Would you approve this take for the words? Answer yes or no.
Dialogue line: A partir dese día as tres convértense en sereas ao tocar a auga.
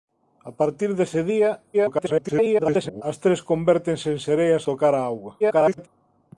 no